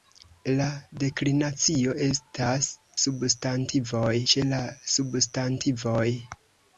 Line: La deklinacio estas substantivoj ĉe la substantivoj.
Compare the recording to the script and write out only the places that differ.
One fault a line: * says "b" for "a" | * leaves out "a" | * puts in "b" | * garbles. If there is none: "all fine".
all fine